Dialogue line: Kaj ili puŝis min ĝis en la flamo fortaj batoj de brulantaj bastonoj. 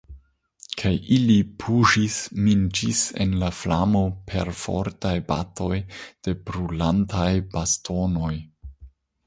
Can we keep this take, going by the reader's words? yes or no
no